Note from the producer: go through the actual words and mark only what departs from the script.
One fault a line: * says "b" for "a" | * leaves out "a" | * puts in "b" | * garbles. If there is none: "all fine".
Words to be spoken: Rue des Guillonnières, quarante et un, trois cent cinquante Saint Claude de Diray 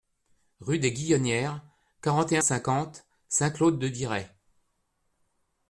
* leaves out "un trois cent"